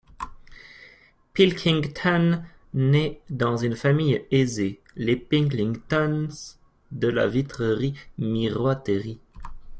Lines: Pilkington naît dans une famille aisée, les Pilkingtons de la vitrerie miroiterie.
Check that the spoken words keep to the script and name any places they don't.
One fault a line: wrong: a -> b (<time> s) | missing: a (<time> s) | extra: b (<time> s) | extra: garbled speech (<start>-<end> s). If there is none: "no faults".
no faults